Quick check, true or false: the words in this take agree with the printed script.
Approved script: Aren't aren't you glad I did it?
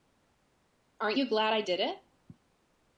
false